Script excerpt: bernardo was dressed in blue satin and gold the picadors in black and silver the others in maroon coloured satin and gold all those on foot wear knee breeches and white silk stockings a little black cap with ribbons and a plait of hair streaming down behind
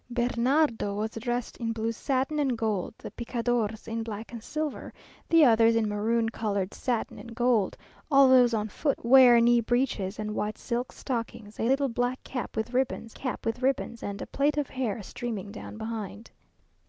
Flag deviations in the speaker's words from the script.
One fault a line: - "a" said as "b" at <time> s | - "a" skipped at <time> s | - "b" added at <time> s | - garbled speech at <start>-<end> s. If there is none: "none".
- "cap with ribbons" added at 13.1 s